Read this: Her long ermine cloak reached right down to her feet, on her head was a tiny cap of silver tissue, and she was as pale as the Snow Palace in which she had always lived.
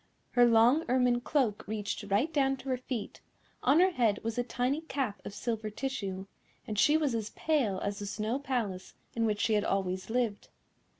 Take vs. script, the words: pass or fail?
pass